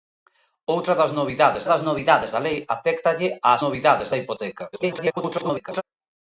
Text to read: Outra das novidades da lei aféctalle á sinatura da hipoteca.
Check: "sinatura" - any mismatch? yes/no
yes